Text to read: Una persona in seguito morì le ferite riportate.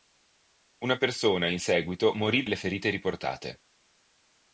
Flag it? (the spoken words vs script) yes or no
no